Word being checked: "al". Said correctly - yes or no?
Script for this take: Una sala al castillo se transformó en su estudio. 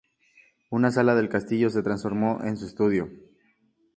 no